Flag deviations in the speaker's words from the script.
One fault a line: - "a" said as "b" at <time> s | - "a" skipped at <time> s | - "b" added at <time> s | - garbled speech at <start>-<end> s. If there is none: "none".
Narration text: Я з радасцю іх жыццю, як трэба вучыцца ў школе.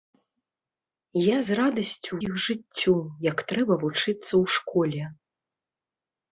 none